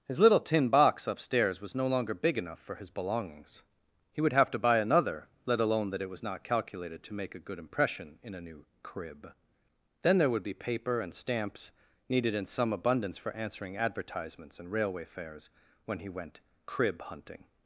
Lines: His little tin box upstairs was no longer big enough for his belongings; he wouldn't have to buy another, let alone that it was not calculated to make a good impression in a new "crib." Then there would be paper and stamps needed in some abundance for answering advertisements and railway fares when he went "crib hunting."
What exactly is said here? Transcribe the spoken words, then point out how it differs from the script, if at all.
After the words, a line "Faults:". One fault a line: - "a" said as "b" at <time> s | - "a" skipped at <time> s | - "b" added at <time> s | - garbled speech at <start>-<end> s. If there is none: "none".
His little tin box upstairs was no longer big enough for his belongings; he would have to buy another, let alone that it was not calculated to make a good impression in a new "crib." Then there would be paper and stamps needed in some abundance for answering advertisements and railway fares when he went "crib hunting."
Faults:
- "wouldn't" said as "would" at 4.2 s